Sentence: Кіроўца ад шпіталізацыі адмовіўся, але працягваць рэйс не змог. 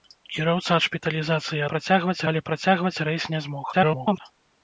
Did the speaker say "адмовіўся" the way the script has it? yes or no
no